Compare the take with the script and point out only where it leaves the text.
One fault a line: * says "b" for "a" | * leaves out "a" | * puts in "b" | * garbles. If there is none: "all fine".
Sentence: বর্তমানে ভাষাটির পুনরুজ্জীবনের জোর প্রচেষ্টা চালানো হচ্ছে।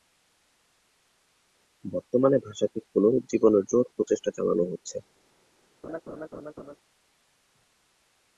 all fine